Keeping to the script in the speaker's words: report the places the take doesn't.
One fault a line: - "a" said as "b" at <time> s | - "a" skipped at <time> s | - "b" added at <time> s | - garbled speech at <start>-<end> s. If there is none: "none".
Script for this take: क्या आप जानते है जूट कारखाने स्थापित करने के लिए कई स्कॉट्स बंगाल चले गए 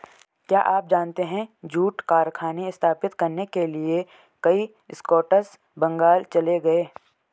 none